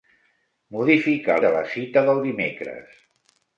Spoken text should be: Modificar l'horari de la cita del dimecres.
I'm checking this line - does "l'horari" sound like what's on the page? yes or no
no